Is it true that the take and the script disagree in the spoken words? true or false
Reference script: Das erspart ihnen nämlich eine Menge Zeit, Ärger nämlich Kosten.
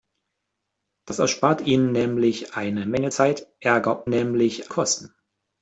false